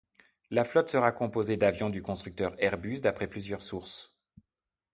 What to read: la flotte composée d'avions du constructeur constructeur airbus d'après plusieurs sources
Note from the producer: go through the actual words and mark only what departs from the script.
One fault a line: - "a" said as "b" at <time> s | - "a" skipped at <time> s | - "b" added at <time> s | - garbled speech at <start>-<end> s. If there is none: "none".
- "sera" added at 0.9 s
- "constructeur" skipped at 2.5 s